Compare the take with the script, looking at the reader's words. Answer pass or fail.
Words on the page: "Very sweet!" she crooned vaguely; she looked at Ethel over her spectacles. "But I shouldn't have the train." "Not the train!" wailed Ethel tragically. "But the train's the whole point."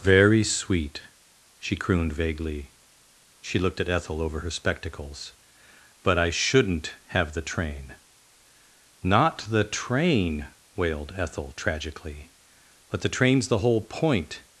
pass